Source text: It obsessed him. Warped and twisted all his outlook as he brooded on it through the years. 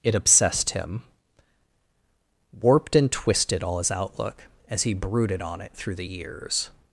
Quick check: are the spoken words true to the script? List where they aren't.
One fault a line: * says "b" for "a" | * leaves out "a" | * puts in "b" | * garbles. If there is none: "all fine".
all fine